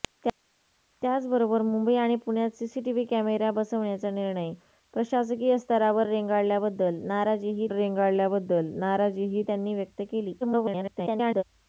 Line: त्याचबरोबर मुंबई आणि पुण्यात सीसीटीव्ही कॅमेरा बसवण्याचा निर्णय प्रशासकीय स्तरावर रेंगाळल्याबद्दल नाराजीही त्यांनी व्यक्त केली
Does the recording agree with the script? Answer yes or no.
no